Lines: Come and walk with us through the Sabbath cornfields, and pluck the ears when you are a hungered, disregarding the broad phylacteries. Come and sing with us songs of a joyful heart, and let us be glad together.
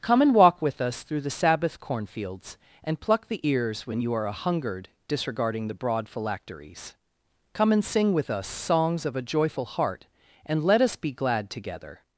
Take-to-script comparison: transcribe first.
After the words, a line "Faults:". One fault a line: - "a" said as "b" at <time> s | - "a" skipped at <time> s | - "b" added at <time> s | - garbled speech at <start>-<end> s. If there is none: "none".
Come and walk with us through the Sabbath cornfields, and pluck the ears when you are a hungered, disregarding the broad phylacteries. Come and sing with us songs of a joyful heart, and let us be glad together.
Faults:
none